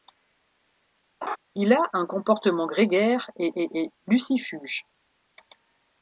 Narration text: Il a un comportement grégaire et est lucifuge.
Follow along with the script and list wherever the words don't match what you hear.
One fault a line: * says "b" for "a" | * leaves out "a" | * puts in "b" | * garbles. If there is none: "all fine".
* puts in "et"